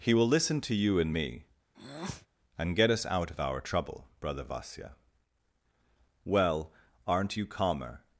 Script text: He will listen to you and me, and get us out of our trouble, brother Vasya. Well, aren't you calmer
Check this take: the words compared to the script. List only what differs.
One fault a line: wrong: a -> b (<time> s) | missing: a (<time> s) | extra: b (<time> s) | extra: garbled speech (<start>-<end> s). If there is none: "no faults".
no faults